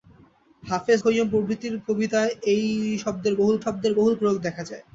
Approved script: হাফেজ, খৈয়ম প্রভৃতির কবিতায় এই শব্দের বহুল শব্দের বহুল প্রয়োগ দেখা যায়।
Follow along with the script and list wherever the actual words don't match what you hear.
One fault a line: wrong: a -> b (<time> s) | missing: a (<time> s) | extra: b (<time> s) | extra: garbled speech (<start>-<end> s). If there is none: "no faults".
no faults